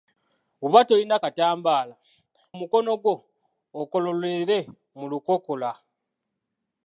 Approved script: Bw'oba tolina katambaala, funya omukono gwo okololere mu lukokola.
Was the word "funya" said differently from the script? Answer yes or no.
yes